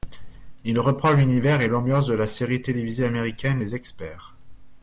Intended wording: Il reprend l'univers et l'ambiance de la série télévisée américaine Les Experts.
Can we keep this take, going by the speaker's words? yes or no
yes